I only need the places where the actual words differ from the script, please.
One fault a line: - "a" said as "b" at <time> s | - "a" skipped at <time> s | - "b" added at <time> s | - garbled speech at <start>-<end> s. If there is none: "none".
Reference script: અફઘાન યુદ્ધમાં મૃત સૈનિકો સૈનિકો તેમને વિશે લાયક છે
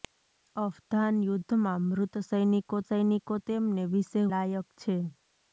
none